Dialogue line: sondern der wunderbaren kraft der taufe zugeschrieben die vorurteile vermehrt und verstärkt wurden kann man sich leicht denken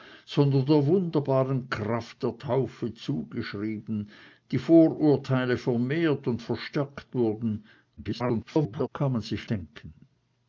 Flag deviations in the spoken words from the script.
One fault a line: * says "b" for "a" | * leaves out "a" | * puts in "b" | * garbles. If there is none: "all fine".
* garbles
* leaves out "leicht"